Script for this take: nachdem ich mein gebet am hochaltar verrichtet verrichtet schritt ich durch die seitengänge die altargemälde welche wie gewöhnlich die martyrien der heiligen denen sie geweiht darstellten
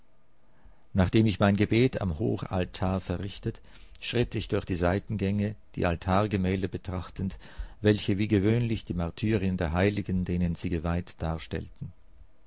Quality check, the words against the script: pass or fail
fail